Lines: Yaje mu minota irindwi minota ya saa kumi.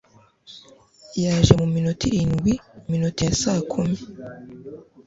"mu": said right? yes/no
yes